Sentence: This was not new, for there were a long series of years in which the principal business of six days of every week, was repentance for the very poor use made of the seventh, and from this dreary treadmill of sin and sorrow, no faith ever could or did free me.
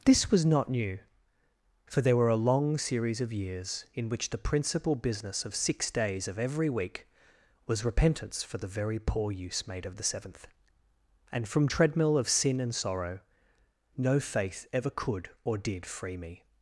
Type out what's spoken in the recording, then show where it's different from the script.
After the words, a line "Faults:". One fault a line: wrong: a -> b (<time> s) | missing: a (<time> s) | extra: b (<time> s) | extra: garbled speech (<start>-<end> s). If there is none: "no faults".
This was not new, for there were a long series of years in which the principal business of six days of every week, was repentance for the very poor use made of the seventh, and from treadmill of sin and sorrow, no faith ever could or did free me.
Faults:
missing: this dreary (11.7 s)